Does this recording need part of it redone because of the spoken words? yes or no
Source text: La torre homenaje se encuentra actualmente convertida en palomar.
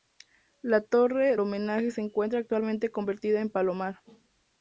no